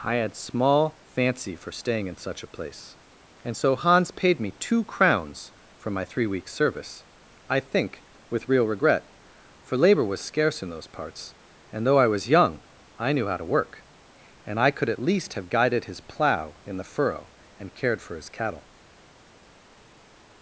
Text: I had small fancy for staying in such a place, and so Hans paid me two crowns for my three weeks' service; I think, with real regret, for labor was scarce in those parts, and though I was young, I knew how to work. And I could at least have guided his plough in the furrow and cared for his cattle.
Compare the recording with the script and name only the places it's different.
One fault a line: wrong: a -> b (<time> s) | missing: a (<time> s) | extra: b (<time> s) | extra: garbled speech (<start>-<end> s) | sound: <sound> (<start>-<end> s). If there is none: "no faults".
no faults